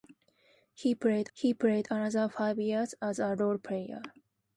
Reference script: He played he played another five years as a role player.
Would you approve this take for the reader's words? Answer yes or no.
yes